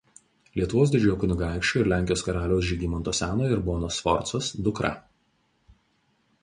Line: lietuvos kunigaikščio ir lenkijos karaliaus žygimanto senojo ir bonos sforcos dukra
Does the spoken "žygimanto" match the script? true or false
true